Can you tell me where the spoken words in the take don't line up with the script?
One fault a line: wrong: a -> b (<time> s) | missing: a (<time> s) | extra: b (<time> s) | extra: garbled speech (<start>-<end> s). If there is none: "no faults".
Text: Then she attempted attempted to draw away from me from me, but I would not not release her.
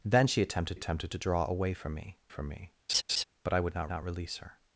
no faults